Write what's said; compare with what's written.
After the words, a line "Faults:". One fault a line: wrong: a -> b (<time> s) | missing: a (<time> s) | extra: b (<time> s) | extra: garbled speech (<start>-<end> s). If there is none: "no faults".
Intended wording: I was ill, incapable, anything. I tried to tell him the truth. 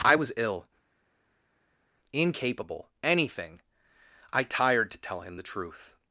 I was ill, incapable, anything. I tired to tell him the truth.
Faults:
wrong: tried -> tired (4.4 s)